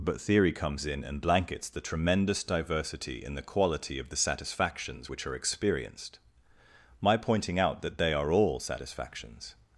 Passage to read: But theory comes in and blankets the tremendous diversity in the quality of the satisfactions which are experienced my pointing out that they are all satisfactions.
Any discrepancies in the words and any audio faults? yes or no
no